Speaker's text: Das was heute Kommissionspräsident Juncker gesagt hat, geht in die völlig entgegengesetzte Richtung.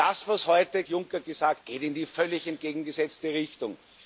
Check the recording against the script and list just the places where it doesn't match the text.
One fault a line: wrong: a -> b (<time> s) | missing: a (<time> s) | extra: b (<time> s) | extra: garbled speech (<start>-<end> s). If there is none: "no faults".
missing: Kommissionspräsident (0.8 s)
missing: hat (1.6 s)